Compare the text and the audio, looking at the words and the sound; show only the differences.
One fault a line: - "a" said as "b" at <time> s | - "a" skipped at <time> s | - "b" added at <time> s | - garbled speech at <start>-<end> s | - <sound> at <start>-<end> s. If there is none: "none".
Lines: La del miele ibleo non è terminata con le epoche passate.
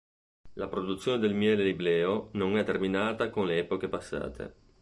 - "produzione" added at 0.7 s